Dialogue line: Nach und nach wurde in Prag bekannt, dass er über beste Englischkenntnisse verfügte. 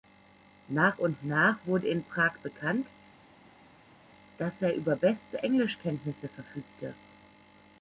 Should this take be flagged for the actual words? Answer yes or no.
no